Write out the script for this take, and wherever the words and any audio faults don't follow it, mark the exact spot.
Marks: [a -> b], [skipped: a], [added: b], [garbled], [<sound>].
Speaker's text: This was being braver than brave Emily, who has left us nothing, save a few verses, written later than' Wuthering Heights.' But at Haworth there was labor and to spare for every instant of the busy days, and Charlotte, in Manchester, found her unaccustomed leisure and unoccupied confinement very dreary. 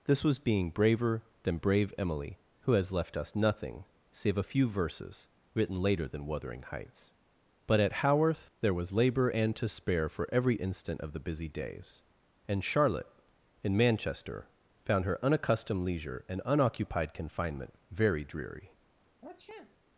This was being braver than brave Emily, who has left us nothing, save a few verses, written later than' Wuthering Heights.' But at Haworth there was labor and to spare for every instant of the busy days, and Charlotte, in Manchester, found her unaccustomed leisure and unoccupied confinement very dreary. [sniff]